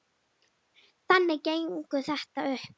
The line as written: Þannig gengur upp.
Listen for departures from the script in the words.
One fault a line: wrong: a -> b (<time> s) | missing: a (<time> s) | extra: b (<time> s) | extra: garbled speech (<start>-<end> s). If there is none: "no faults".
extra: þetta (2.1 s)